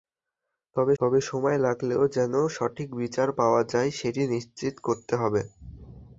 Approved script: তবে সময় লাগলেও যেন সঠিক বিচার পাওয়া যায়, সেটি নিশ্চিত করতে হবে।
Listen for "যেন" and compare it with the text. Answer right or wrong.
right